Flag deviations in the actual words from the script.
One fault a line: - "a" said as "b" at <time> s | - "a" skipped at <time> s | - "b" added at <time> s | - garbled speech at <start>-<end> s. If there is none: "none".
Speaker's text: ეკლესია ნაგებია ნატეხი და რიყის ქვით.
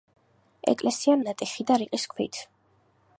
- "ნაგებია" skipped at 1.2 s